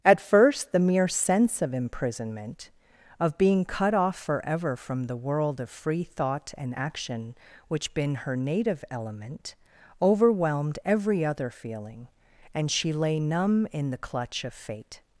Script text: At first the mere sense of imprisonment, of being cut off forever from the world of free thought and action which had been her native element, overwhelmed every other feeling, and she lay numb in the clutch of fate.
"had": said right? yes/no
no